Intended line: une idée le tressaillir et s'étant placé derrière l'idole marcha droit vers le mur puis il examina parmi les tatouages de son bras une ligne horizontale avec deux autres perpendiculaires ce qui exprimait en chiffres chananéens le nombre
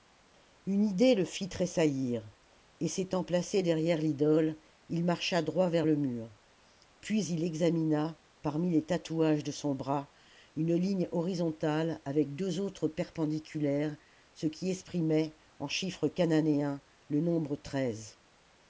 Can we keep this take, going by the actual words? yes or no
no